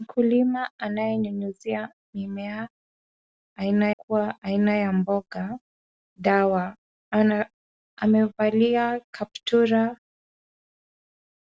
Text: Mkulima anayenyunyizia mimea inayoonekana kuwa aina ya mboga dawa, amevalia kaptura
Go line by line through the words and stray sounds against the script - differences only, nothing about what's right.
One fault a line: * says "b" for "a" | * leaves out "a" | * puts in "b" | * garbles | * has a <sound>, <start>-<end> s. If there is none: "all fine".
* says "aina" for "inayoonekana"